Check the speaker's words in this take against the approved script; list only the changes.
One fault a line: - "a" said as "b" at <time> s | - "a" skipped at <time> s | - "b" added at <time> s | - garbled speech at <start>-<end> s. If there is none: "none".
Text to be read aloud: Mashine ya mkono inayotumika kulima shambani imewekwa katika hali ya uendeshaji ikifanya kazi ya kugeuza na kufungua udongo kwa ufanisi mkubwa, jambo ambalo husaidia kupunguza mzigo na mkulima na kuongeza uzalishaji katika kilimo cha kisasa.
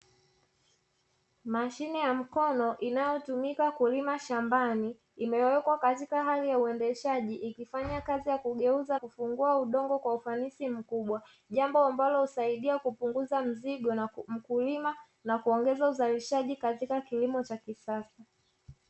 - "na" skipped at 9.0 s